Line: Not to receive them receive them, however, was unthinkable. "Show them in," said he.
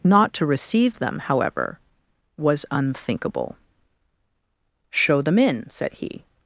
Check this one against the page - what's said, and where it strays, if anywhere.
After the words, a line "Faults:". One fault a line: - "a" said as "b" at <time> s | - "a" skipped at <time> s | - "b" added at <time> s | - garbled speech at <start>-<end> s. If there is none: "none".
Not to receive them, however, was unthinkable. "Show them in," said he.
Faults:
- "receive them" skipped at 1.2 s